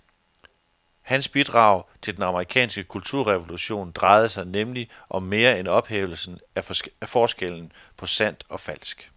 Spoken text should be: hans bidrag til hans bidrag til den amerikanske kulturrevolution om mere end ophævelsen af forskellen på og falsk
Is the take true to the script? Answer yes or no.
no